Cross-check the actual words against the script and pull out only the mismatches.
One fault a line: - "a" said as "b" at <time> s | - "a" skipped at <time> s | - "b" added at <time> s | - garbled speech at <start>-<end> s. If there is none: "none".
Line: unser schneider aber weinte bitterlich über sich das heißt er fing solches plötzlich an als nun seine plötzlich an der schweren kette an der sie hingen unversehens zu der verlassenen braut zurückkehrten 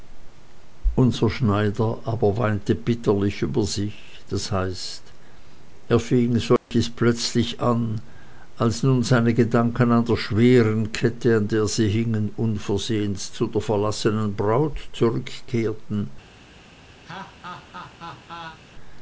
- "plötzlich" said as "gedanken" at 9.3 s